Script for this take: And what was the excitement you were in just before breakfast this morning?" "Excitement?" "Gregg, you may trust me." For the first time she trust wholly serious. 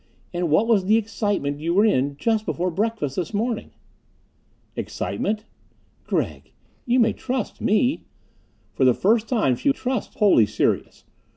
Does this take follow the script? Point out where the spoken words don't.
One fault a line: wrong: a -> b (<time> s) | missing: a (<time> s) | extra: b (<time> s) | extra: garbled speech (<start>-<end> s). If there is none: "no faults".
no faults